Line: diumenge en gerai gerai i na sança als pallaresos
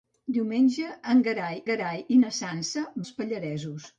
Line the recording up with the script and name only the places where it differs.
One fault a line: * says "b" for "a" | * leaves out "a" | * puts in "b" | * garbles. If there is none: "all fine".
all fine